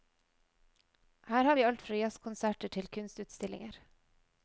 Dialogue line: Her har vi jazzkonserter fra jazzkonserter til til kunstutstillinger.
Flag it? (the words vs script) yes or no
yes